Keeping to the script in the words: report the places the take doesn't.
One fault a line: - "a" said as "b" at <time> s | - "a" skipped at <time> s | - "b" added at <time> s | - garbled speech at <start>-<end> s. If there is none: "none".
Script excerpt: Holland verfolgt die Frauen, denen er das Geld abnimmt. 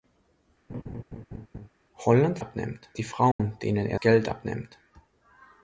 - "verfolgt" said as "abnimmt" at 2.4 s
- "das" skipped at 4.0 s